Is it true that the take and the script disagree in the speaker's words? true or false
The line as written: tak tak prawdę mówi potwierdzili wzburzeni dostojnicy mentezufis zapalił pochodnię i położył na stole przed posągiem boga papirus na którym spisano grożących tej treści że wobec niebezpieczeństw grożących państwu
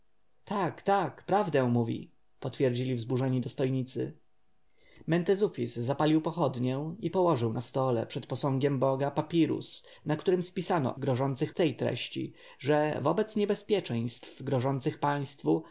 false